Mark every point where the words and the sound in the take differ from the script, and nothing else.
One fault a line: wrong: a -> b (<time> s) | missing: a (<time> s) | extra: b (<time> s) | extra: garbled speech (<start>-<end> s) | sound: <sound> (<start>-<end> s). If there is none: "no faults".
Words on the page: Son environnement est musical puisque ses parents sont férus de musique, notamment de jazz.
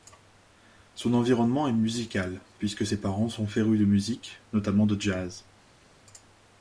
no faults